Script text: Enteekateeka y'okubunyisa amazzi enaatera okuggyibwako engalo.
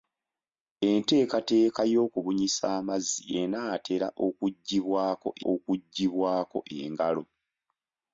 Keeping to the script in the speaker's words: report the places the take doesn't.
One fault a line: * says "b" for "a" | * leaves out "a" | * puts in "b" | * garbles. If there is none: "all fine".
* puts in "okuggyibwako"